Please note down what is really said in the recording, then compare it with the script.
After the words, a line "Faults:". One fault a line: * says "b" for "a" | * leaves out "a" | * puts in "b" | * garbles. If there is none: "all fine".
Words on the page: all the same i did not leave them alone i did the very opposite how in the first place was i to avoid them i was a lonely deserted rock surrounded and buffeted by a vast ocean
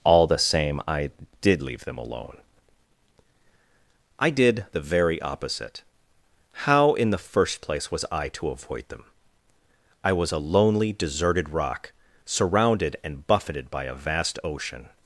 all the same i did leave them alone i did the very opposite how in the first place was i to avoid them i was a lonely deserted rock surrounded and buffeted by a vast ocean
Faults:
* leaves out "not"